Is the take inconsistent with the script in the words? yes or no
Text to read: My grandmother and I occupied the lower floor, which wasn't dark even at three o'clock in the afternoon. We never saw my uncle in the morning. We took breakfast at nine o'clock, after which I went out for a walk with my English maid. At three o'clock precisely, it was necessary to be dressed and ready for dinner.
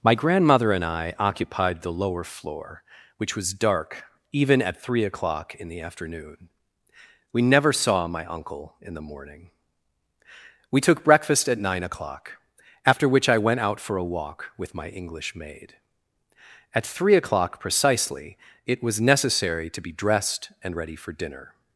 yes